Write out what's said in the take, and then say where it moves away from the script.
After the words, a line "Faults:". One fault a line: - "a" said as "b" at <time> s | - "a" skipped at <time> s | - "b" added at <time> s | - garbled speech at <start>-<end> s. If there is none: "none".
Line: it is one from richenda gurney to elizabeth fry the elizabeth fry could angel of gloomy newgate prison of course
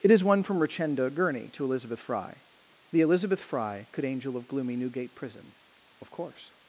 it is one from richenda gurney to elizabeth fry the elizabeth fry could angel of gloomy newgate prison of course
Faults:
none